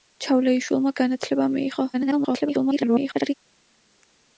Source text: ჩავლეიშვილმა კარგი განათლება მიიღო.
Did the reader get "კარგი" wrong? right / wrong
wrong